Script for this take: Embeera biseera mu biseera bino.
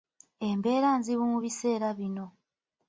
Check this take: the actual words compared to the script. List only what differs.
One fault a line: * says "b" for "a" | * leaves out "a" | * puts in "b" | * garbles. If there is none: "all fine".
* says "nzibu" for "biseera"